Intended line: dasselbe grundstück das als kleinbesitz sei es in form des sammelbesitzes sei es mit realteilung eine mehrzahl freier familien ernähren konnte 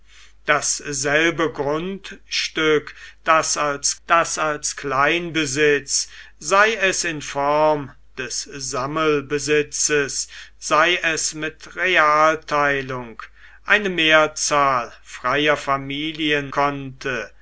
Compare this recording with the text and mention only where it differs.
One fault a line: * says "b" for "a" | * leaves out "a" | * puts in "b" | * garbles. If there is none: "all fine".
* puts in "das als"
* leaves out "ernähren"